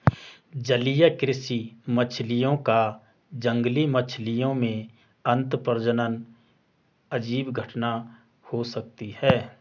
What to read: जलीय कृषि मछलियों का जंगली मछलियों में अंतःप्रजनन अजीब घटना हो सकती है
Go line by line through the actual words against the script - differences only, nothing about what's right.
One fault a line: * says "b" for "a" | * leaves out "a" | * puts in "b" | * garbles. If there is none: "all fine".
all fine